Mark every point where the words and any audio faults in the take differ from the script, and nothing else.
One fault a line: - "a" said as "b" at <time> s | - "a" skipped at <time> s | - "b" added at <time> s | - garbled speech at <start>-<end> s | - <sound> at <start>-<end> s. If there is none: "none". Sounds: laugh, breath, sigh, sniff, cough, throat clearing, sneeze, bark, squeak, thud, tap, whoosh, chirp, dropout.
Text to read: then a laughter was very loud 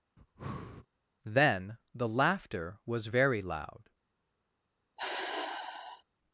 - breath at 0.2-0.9 s
- "a" said as "the" at 1.9 s
- sigh at 5.0-6.0 s